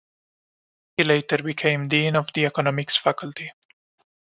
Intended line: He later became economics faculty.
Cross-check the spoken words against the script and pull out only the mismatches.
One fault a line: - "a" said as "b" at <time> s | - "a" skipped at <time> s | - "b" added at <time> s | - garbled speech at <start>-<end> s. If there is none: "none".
- "dean of the" added at 1.9 s